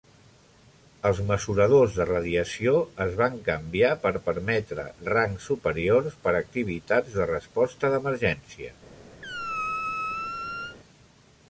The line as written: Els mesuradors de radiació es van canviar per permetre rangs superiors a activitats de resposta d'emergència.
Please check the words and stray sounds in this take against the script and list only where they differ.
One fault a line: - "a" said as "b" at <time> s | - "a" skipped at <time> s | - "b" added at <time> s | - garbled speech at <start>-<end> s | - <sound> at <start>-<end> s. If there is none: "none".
- "per" added at 6.3 s
- squeak at 9.2-10.8 s